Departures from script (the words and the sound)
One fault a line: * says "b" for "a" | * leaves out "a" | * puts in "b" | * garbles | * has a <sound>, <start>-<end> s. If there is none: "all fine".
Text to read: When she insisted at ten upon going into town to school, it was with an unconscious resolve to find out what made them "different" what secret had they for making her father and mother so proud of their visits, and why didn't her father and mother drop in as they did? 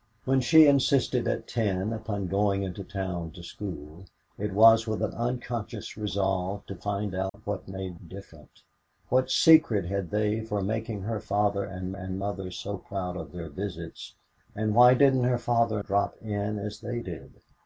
* has a dropout, 7.3-7.3 s
* leaves out "them"
* puts in "and"
* leaves out "and mother"